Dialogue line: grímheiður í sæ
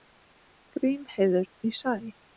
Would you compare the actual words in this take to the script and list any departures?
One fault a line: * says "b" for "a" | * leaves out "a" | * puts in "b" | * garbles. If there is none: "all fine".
all fine